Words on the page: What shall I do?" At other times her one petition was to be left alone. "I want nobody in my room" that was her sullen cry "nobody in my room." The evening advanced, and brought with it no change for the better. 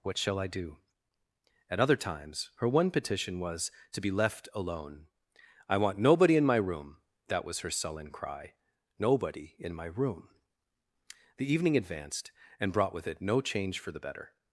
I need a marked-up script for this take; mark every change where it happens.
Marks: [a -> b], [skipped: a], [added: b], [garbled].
What shall I do?" At other times her one petition was to be left alone. "I want nobody in my room" that was her sullen cry "nobody in my room." The evening advanced, and brought with it no change for the better.